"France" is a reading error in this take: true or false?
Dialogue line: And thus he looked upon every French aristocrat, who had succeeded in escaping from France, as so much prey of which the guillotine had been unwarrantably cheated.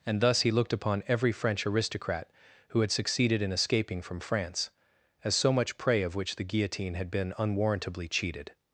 false